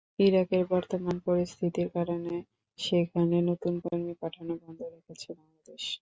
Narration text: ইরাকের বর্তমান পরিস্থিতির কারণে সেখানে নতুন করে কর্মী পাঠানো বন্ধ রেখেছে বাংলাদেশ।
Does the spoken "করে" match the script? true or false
false